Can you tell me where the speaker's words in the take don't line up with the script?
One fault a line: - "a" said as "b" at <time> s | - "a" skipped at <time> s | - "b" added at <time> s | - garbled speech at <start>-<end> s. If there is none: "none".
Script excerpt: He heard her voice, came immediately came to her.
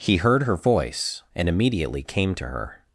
- "came" said as "and" at 1.3 s